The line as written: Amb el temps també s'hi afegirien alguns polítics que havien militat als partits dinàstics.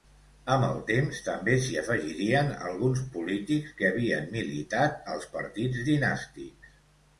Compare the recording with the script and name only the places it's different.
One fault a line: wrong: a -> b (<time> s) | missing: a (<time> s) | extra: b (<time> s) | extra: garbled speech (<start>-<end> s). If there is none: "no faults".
no faults